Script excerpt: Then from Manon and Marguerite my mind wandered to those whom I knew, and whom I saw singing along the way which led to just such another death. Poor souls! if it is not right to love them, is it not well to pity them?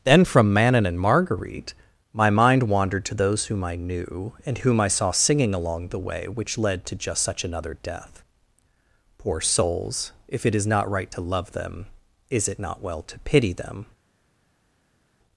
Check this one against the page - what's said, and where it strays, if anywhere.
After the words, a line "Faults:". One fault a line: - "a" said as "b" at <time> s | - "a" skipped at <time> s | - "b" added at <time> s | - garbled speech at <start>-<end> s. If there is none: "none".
Then from Manon and Marguerite my mind wandered to those whom I knew, and whom I saw singing along the way which led to just such another death. Poor souls! if it is not right to love them, is it not well to pity them?
Faults:
none